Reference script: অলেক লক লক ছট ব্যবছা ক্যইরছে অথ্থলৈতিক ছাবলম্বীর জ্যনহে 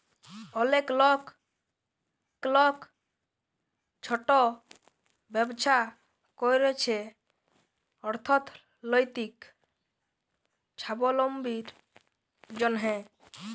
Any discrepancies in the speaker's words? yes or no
no